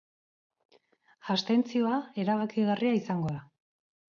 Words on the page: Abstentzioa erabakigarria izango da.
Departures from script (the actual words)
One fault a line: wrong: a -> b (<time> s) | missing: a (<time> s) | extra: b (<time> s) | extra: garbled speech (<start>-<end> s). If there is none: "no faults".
no faults